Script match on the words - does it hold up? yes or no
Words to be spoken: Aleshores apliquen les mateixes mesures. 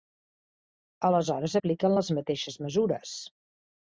yes